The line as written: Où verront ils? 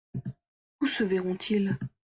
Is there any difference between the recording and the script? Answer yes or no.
yes